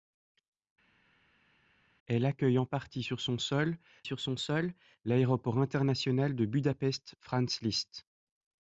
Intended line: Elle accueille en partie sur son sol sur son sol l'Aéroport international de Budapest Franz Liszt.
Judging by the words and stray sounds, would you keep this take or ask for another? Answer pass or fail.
pass